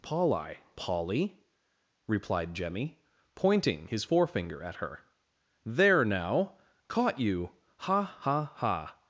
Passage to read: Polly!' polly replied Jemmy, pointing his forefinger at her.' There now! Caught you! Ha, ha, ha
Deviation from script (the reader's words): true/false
false